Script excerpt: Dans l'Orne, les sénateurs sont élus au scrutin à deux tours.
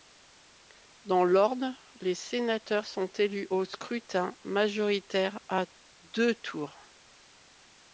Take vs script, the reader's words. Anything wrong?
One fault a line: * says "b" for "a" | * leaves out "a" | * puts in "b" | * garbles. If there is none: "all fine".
* puts in "majoritaire"